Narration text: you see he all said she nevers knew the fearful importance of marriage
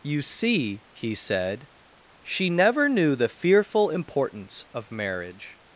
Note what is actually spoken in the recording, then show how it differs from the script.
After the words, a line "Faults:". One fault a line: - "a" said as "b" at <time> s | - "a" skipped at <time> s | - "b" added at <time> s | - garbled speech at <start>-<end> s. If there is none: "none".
you see he said she never knew the fearful importance of marriage
Faults:
- "all" skipped at 1.1 s
- "nevers" said as "never" at 2.5 s